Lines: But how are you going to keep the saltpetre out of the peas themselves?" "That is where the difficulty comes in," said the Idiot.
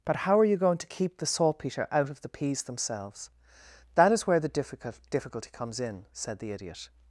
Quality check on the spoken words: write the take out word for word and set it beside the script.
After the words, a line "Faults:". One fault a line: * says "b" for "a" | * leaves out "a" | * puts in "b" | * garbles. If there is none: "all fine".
But how are you going to keep the saltpetre out of the peas themselves?" "That is where the difficult difficulty comes in," said the Idiot.
Faults:
* puts in "difficult"